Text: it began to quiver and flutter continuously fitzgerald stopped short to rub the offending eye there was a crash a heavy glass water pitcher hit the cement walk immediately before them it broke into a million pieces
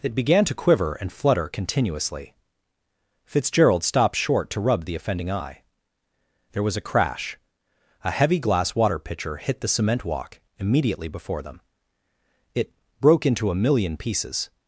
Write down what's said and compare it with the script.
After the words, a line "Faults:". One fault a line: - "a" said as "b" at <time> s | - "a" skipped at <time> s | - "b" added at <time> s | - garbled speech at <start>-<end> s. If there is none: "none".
it began to quiver and flutter continuously fitzgerald stopped short to rub the offending eye there was a crash a heavy glass water pitcher hit the cement walk immediately before them it broke into a million pieces
Faults:
none